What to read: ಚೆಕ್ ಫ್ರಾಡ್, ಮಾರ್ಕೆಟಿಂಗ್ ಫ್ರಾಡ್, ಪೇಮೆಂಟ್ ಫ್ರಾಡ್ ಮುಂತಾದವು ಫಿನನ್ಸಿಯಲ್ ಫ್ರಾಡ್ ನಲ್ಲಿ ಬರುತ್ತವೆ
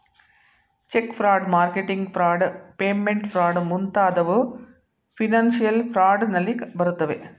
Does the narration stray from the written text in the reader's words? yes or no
no